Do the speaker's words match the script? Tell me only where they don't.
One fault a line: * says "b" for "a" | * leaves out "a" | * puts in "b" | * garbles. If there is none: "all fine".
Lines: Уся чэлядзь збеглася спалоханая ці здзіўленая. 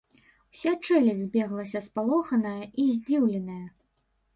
* says "і" for "ці"